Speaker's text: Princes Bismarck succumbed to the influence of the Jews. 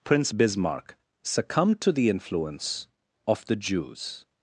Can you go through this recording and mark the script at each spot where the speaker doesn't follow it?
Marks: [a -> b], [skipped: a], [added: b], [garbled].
[Princes -> Prince] Bismarck succumbed to the influence of the Jews.